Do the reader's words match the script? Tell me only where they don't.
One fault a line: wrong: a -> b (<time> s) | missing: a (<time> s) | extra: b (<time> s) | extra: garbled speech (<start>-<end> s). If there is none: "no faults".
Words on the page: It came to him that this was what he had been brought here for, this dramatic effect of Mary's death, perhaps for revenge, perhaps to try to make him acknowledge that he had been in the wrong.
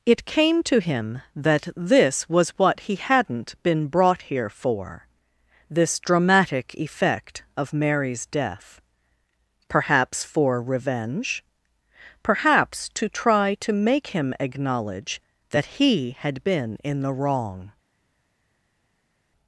wrong: had -> hadn't (3.0 s)